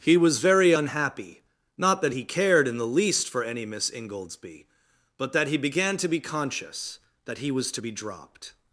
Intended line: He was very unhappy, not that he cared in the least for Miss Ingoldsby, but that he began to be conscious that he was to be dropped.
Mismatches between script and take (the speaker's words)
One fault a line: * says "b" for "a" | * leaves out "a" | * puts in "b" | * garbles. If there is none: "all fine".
* puts in "any"